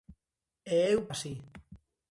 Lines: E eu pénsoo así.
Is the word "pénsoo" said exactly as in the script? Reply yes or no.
no